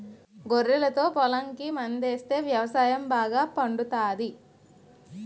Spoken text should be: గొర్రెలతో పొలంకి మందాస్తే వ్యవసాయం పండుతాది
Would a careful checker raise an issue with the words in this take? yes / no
yes